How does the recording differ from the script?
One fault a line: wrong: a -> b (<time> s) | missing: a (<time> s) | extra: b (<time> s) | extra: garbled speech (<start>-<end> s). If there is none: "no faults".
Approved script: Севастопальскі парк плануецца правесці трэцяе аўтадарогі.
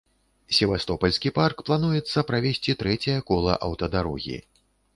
extra: кола (3.3 s)